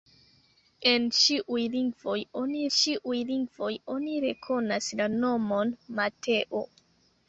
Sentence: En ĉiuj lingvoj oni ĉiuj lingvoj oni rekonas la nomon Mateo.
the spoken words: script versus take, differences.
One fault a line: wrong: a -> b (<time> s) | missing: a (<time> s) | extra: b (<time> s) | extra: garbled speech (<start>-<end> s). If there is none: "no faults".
no faults